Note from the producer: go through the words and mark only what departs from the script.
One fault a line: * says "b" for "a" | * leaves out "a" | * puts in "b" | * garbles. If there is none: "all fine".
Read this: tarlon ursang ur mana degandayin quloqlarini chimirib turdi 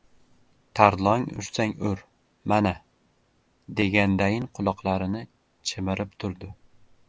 all fine